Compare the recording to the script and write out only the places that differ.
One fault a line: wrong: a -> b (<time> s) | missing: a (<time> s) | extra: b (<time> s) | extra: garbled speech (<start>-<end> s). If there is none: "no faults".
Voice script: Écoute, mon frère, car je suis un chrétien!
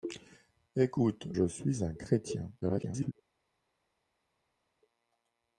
missing: mon frère car (1.3 s)
extra: garbled speech (2.6-3.1 s)